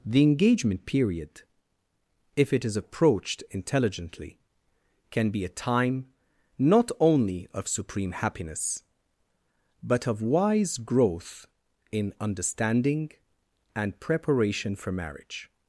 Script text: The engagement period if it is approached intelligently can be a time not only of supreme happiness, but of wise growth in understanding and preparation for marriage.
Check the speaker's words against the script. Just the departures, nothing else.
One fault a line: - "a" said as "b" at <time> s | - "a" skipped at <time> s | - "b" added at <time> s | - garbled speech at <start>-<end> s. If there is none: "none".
none